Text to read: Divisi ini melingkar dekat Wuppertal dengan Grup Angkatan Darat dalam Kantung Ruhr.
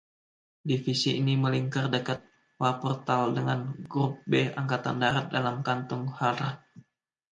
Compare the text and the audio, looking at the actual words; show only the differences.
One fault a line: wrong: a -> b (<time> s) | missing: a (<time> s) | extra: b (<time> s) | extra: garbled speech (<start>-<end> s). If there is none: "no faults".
extra: B (4.2 s)